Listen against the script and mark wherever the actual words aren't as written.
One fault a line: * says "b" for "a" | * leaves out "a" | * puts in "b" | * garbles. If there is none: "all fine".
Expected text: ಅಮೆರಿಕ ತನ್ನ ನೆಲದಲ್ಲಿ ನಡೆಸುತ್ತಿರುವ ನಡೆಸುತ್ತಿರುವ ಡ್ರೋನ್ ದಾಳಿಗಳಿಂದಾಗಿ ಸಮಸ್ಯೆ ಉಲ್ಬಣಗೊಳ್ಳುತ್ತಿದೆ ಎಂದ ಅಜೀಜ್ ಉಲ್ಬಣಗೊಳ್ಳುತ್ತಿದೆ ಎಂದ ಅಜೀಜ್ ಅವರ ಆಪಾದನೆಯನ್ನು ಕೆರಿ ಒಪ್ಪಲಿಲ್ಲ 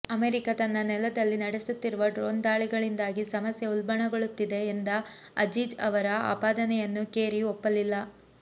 * leaves out "ನಡೆಸುತ್ತಿರುವ"
* leaves out "ಉಲ್ಬಣಗೊಳ್ಳುತ್ತಿದೆ ಎಂದ ಅಜೀಜ್"